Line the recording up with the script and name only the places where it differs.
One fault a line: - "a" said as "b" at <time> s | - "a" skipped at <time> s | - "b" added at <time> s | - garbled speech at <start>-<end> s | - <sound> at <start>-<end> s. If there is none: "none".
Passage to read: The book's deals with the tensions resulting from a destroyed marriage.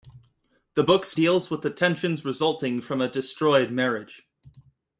none